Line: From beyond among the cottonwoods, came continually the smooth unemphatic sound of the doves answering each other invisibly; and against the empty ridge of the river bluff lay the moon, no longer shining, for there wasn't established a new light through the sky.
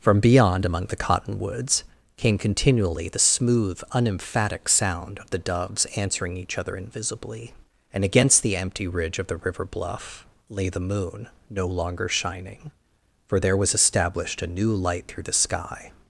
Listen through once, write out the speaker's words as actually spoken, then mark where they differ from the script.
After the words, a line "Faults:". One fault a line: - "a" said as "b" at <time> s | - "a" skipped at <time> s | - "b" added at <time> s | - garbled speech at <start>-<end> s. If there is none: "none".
From beyond among the cottonwoods, came continually the smooth unemphatic sound of the doves answering each other invisibly; and against the empty ridge of the river bluff lay the moon, no longer shining, for there was established a new light through the sky.
Faults:
- "wasn't" said as "was" at 13.6 s